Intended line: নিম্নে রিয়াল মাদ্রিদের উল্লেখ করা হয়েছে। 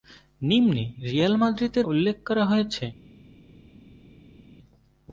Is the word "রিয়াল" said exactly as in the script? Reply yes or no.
yes